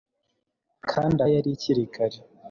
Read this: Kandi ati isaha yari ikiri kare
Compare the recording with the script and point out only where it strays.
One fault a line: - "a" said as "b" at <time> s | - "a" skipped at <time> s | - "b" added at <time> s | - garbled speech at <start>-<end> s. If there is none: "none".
- "ati isaha" skipped at 1.2 s